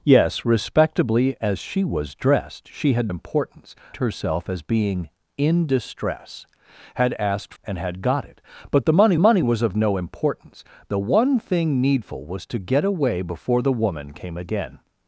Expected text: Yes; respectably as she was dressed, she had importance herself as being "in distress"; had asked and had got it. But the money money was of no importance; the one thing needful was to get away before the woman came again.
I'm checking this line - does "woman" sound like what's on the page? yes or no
yes